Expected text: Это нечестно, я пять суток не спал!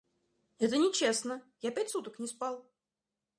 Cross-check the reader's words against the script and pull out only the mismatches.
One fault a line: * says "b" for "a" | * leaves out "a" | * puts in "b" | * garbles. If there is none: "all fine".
all fine